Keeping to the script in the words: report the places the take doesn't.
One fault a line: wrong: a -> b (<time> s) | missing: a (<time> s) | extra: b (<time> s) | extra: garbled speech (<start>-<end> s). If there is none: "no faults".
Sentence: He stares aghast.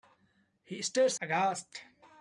no faults